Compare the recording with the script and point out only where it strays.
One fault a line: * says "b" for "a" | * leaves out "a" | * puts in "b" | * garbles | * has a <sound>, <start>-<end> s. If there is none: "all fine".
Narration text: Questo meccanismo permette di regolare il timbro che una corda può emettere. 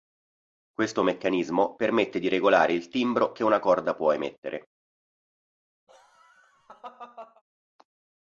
* has a laugh, 5.9-7.4 s